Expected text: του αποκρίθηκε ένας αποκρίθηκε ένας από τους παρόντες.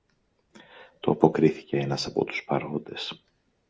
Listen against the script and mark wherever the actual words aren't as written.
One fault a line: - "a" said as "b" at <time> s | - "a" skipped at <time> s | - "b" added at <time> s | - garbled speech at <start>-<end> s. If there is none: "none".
- "αποκρίθηκε ένας" skipped at 2.0 s